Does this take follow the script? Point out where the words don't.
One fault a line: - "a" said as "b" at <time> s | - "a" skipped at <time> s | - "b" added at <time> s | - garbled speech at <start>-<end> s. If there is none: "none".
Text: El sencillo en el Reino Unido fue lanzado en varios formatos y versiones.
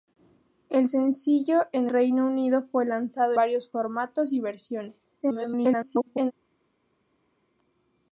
- "el" skipped at 1.9 s
- "en" skipped at 3.3 s
- garbled speech at 5.2-6.3 s